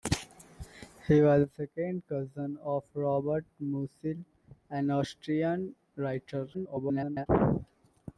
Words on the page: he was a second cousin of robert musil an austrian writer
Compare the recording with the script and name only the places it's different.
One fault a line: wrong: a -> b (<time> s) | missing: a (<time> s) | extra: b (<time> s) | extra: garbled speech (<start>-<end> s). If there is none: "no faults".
extra: garbled speech (6.5-7.3 s)